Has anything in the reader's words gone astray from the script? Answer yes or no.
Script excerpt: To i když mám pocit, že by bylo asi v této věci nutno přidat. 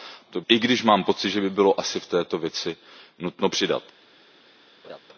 no